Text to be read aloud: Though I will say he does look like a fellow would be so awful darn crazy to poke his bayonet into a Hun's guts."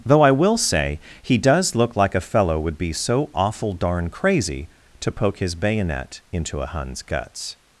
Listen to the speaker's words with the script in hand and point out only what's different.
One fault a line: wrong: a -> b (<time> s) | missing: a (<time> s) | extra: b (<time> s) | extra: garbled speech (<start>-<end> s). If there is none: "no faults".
no faults